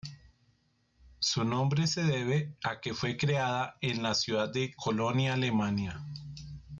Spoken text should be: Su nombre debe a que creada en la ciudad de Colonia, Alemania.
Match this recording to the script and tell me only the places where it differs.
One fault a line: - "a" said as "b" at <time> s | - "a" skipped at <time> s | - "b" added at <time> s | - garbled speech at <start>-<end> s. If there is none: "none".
- "se" added at 1.9 s
- "fue" added at 3.0 s